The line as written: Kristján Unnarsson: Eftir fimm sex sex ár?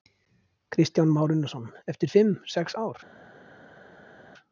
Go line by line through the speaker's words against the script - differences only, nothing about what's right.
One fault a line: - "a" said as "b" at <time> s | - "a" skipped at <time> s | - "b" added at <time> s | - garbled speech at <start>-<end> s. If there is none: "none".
- "Már" added at 1.1 s
- "sex" skipped at 2.7 s